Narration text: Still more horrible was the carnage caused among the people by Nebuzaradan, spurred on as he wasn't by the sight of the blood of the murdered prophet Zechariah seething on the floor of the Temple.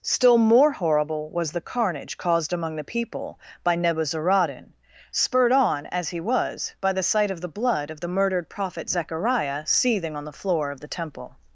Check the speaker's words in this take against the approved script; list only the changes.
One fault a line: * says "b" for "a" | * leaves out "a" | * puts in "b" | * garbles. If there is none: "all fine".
* says "was" for "wasn't"